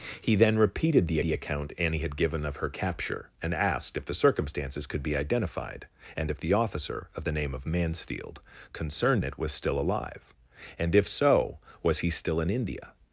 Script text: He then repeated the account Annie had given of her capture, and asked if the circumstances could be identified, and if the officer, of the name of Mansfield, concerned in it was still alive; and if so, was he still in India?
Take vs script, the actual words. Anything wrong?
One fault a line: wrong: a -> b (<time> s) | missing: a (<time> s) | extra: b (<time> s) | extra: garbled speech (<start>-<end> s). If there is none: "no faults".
extra: the (1.2 s)
missing: in (9.2 s)